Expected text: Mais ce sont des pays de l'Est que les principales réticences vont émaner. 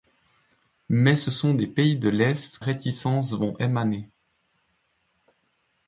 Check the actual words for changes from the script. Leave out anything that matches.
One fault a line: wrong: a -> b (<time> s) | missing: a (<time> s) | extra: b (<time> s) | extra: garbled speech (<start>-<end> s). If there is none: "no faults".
missing: que les principales (2.6 s)